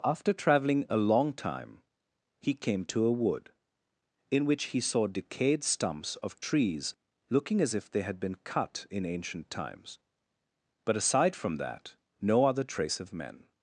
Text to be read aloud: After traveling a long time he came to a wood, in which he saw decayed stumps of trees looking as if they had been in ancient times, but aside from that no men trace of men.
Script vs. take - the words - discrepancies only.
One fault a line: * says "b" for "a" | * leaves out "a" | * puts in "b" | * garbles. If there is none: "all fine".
* puts in "cut"
* says "other" for "men"